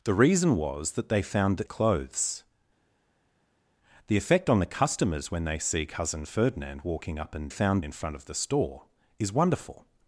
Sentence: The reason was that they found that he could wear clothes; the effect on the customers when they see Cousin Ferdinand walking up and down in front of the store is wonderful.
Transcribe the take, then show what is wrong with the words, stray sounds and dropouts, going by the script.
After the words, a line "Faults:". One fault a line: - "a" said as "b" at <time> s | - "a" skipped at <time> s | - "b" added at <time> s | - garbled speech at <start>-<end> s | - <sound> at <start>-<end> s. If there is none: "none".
The reason was that they found that clothes; the effect on the customers when they see Cousin Ferdinand walking up and found in front of the store is wonderful.
Faults:
- "he could wear" skipped at 1.7 s
- "down" said as "found" at 7.5 s